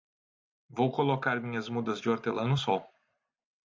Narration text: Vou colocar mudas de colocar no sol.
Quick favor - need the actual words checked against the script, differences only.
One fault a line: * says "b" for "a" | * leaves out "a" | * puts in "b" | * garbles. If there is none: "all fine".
* puts in "minhas"
* says "hortelã" for "colocar"